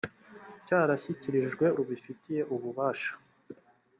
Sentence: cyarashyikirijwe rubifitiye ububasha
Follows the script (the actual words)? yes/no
yes